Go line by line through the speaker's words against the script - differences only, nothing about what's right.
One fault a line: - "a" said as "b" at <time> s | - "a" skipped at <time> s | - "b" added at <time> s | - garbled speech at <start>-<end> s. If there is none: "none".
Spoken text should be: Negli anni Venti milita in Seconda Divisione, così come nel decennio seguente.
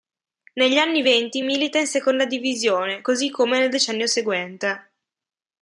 none